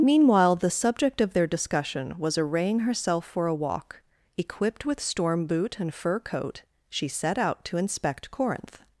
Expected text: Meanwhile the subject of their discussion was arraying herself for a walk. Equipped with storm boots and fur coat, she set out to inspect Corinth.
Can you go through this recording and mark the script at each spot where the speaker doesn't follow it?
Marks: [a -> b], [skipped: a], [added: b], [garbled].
Meanwhile the subject of their discussion was arraying herself for a walk. Equipped with storm [boots -> boot] and fur coat, she set out to inspect Corinth.